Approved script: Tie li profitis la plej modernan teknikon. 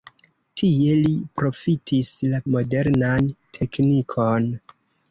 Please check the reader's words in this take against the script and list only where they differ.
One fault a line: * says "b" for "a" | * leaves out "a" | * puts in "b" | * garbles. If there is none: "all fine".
* leaves out "plej"